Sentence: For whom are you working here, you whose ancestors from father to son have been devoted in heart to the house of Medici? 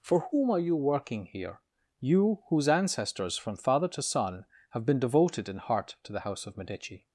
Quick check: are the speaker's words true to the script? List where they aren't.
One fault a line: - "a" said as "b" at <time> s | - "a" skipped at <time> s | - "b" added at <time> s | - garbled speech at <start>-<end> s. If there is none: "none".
none